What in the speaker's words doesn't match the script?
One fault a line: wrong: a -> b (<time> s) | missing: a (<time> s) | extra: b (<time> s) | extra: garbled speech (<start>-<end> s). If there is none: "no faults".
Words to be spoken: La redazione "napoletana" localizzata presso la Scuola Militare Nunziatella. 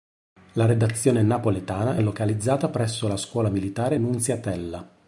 no faults